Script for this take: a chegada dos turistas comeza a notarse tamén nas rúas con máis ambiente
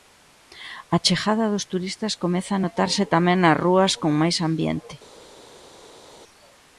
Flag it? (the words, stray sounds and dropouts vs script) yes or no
no